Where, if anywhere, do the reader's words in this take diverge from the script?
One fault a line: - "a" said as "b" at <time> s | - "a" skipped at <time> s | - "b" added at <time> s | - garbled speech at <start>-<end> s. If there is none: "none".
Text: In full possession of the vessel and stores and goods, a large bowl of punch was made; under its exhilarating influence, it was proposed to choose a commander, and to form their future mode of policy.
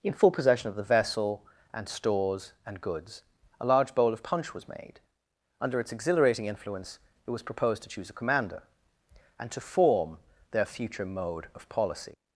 none